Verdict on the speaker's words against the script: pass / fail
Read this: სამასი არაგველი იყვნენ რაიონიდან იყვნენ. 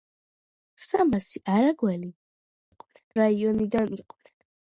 pass